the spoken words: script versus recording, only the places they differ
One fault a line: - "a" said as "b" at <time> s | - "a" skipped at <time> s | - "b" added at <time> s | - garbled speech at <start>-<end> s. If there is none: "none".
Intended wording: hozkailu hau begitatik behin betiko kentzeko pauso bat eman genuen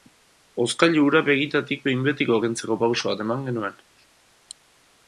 - "hau" said as "hura" at 1.1 s